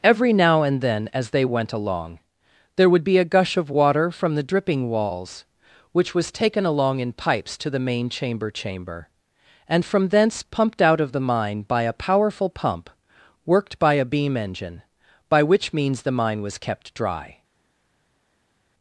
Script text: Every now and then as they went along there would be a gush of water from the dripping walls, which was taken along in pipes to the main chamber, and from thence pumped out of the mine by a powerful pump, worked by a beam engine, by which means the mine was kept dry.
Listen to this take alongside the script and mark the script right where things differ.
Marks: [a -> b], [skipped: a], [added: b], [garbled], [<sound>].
Every now and then as they went along there would be a gush of water from the dripping walls, which was taken along in pipes to the main chamber, [added: chamber] and from thence pumped out of the mine by a powerful pump, worked by a beam engine, by which means the mine was kept dry.